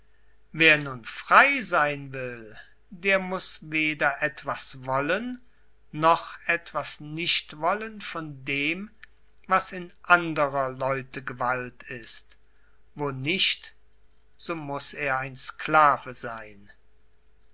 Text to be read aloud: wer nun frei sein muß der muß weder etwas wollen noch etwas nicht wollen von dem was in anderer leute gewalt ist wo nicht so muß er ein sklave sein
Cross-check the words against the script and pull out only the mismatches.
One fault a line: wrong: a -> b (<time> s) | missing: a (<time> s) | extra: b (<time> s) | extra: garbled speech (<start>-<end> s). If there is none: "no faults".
wrong: muß -> will (2.1 s)